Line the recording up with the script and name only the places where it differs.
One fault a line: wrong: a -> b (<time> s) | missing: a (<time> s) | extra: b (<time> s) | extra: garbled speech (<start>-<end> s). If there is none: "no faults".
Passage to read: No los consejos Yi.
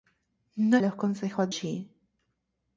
no faults